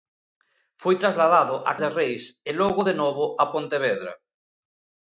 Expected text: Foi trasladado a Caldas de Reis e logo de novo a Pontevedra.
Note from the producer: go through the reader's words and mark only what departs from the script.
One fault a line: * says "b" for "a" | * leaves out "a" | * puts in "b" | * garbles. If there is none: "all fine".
* leaves out "Caldas"